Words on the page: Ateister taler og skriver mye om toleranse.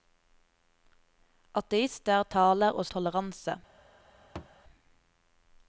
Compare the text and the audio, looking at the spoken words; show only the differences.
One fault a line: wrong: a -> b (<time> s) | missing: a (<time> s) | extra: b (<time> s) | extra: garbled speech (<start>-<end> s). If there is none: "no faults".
missing: skriver mye om (2.9 s)